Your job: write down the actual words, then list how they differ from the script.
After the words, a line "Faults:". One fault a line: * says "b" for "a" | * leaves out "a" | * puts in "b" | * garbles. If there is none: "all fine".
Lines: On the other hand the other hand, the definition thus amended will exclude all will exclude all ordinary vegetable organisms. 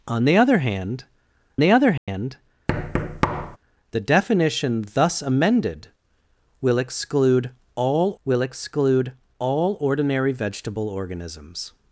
On the other hand the other hand, the definition thus amended will exclude all will exclude all ordinary vegetable organisms.
Faults:
all fine